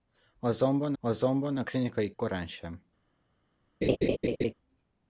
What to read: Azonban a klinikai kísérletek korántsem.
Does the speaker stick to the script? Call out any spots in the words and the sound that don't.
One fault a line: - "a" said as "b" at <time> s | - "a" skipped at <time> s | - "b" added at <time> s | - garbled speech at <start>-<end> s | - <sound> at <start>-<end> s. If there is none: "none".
- "azonban" added at 1.0 s
- "kísérletek" skipped at 2.1 s
- laugh at 3.8-4.5 s